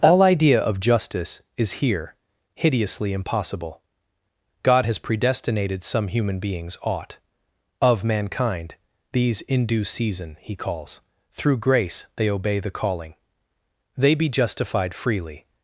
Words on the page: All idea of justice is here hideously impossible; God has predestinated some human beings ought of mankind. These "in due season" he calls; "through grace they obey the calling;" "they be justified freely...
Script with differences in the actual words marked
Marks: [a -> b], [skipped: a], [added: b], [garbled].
All idea of justice is here hideously impossible; God has predestinated some human beings ought of mankind. These "in due season" he calls; "through grace they obey the calling;" "they be justified freely...